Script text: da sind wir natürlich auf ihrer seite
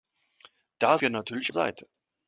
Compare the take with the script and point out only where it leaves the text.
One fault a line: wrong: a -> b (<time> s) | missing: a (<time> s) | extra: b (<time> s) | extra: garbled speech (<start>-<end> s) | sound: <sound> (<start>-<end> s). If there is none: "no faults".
missing: sind (1.0 s)
missing: auf ihrer (1.5 s)